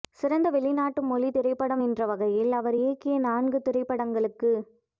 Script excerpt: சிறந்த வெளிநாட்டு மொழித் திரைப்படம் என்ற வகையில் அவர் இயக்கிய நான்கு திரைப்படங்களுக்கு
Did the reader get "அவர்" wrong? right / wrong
right